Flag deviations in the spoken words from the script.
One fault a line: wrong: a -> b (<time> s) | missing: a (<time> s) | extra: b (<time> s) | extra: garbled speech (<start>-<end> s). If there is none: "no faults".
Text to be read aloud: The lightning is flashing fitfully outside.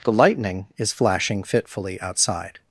no faults